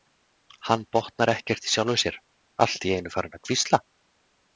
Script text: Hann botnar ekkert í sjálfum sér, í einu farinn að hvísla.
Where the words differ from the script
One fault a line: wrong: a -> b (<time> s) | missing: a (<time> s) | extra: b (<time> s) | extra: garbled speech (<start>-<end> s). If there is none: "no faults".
extra: allt (2.7 s)